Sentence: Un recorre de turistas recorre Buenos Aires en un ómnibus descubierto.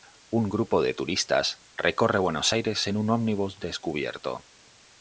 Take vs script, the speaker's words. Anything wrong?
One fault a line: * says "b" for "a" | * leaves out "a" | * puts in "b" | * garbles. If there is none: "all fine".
* says "grupo" for "recorre"